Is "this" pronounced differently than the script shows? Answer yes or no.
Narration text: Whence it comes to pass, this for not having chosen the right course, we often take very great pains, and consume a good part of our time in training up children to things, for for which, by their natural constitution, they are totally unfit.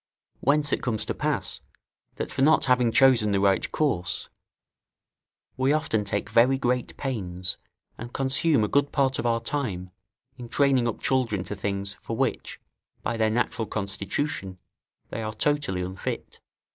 yes